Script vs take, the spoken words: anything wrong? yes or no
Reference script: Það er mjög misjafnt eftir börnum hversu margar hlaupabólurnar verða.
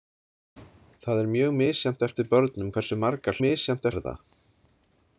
yes